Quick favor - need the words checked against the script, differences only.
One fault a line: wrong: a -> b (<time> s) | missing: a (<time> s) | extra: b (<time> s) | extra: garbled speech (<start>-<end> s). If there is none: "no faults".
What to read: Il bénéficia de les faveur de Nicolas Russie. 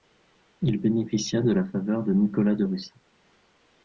wrong: les -> la (1.5 s)
extra: de (2.5 s)